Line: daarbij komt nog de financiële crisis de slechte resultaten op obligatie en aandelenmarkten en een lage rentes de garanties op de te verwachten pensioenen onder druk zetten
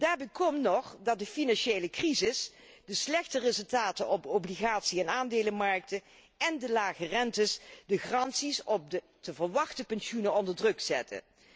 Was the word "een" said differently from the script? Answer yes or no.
yes